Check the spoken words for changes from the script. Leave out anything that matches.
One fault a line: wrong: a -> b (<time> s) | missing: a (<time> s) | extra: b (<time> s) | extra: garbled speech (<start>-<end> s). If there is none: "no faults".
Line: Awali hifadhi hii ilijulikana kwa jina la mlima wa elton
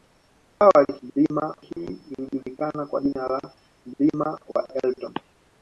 wrong: hifadhi -> mlima (1.0 s)